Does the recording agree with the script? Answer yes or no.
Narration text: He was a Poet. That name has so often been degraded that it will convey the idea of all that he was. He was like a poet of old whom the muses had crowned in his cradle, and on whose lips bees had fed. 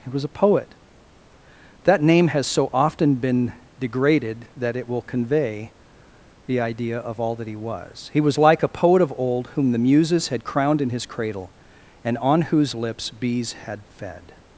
yes